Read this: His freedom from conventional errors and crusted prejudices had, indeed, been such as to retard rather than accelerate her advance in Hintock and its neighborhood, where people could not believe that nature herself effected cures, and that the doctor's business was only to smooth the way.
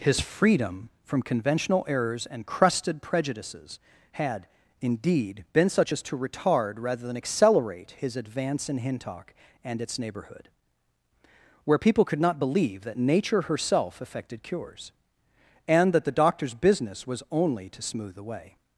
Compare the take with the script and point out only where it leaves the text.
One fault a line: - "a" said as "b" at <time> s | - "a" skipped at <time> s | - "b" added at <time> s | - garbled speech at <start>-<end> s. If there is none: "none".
- "her" said as "his" at 8.0 s